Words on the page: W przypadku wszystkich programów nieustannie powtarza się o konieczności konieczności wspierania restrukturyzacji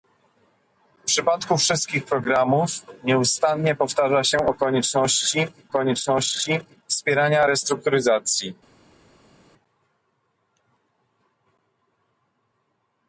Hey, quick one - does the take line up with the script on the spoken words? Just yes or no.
yes